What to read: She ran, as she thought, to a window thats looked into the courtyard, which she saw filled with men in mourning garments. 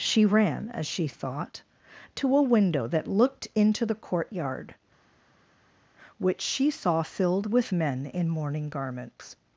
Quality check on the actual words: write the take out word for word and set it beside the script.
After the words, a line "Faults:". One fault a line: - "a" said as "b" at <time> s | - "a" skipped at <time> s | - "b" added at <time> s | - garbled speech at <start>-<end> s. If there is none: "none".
She ran, as she thought, to a window that looked into the courtyard, which she saw filled with men in mourning garments.
Faults:
- "thats" said as "that" at 2.9 s